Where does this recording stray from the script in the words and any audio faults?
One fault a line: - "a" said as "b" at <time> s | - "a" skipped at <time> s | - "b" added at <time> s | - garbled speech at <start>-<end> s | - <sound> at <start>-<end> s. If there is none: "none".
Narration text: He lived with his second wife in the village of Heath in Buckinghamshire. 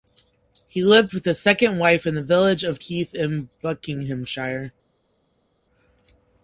none